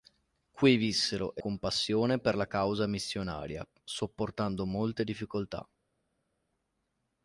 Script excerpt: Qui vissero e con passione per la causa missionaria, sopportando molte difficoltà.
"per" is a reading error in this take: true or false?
false